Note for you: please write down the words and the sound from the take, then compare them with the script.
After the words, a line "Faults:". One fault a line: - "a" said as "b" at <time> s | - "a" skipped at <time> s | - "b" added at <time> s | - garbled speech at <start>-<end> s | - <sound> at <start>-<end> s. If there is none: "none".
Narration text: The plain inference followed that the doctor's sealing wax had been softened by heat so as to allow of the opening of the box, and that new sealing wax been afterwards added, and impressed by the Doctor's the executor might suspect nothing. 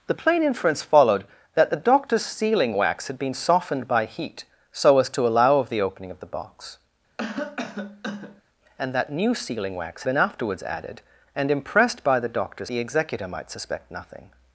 The plain inference followed that the doctor's sealing wax had been softened by heat so as to allow of the opening of the box, and that new sealing wax been afterwards added, and impressed by the Doctor's the executor might suspect nothing.
Faults:
- cough at 7.2-8.4 s